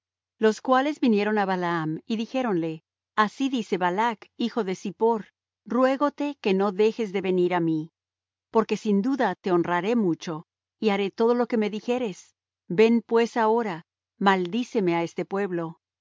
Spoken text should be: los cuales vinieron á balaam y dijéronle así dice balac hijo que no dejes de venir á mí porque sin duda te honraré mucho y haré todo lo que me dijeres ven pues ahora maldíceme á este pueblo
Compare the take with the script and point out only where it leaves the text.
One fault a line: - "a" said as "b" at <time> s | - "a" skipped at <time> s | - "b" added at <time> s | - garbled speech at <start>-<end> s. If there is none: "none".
- "de zippor ruégote" added at 4.6 s